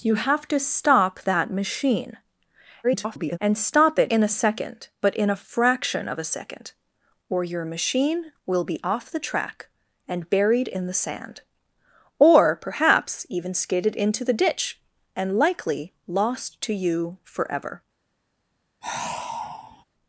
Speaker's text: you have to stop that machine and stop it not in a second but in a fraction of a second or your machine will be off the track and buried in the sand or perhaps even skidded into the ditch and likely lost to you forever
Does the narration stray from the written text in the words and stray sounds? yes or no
yes